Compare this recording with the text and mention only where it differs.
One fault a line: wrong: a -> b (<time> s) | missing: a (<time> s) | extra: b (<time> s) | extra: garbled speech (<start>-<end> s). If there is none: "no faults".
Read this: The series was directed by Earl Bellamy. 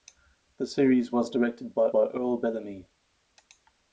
extra: by (1.9 s)